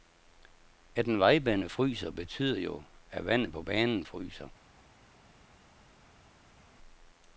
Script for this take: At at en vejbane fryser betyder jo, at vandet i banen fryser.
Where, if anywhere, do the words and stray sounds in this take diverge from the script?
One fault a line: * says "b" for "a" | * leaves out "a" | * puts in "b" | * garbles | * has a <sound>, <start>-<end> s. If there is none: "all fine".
* leaves out "at"
* says "på" for "i"